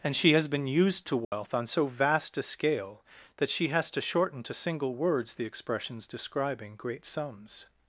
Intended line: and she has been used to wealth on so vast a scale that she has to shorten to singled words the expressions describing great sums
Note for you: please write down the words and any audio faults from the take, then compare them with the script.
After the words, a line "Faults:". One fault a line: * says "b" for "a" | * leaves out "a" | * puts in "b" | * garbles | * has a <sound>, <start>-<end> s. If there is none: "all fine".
and she has been used to wealth on so vast a scale that she has to shorten to single words the expressions describing great sums
Faults:
* has a dropout, 1.2-1.3 s
* says "single" for "singled"